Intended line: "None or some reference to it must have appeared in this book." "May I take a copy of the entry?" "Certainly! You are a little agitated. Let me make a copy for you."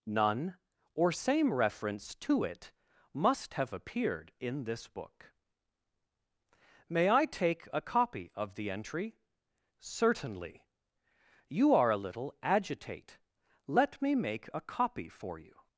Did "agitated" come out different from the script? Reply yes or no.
yes